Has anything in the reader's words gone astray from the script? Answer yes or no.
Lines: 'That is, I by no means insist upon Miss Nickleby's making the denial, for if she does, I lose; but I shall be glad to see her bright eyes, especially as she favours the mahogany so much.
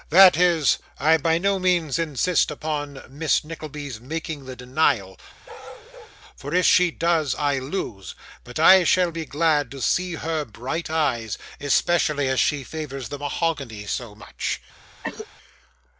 no